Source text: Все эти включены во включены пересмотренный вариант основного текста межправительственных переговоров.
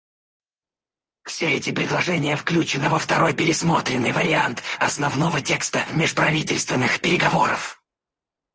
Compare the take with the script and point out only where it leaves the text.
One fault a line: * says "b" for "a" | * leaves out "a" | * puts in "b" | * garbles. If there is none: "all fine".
* puts in "предложения"
* says "второй" for "включены"